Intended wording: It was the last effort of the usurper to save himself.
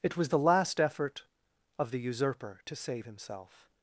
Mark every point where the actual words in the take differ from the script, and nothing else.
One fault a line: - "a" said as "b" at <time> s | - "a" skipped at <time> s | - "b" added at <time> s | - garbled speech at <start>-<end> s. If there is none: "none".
none